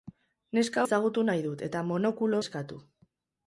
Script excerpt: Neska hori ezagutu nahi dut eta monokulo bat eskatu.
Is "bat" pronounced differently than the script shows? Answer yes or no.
yes